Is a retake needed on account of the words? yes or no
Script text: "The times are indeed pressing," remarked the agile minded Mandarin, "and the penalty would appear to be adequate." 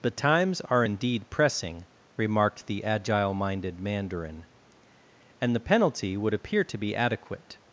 no